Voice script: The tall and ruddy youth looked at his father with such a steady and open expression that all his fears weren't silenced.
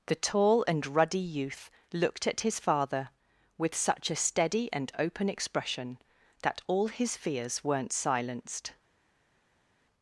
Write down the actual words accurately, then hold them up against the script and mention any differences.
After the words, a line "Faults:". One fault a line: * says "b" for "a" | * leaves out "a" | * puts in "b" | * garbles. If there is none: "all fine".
The tall and ruddy youth looked at his father with such a steady and open expression that all his fears weren't silenced.
Faults:
all fine